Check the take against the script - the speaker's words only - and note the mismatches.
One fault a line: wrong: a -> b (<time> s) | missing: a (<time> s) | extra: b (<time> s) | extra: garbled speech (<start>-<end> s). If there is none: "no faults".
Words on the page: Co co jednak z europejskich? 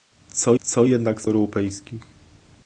no faults